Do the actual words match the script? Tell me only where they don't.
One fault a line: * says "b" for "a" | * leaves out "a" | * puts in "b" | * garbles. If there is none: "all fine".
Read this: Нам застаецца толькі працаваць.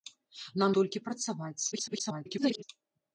* leaves out "застаецца"
* garbles